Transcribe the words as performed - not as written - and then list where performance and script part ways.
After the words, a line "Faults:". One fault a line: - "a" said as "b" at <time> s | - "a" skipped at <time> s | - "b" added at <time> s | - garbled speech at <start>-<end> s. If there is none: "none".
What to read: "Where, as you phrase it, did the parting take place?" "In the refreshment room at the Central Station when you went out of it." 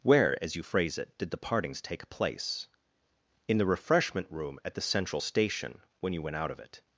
"Where, as you phrase it, did the partings take place?" "In the refreshment room at the Central Station when you went out of it."
Faults:
- "parting" said as "partings" at 1.4 s